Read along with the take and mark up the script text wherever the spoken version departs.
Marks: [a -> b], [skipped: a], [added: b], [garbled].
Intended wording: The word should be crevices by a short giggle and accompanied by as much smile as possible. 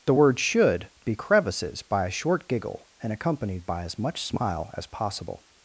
The word should be crevices by a short giggle and accompanied by as much smile as possible.